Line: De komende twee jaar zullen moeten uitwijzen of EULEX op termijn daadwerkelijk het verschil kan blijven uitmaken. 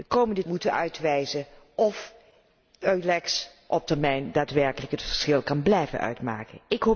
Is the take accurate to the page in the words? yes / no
no